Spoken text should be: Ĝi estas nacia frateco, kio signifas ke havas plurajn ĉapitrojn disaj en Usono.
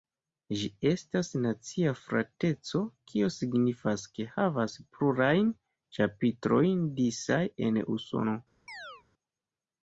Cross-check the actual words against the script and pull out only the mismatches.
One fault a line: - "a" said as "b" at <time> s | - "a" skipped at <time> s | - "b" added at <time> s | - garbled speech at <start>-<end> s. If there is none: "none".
none